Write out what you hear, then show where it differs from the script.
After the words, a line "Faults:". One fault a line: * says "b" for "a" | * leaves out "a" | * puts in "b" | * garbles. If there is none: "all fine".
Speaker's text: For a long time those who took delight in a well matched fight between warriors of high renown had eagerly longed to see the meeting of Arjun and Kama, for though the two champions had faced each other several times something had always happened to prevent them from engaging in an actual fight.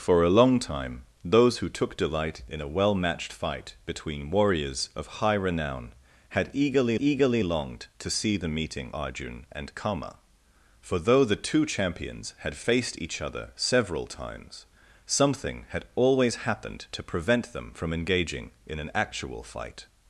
For a long time those who took delight in a well matched fight between warriors of high renown had eagerly eagerly longed to see the meeting Arjun and Kama, for though the two champions had faced each other several times something had always happened to prevent them from engaging in an actual fight.
Faults:
* puts in "eagerly"
* leaves out "of"